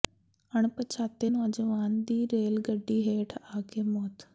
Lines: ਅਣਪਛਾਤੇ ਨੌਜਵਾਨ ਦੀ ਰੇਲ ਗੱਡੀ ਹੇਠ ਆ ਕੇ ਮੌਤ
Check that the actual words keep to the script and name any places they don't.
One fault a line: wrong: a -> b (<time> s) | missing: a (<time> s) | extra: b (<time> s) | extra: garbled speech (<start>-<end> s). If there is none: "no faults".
no faults